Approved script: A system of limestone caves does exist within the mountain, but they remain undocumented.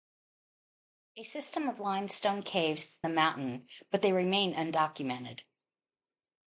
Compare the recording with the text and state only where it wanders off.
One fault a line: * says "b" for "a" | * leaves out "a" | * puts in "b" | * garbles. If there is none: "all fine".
* leaves out "does exist within"